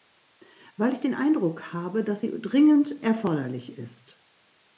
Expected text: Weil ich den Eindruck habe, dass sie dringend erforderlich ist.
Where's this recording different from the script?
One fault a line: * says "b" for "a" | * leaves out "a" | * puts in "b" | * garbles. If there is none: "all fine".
all fine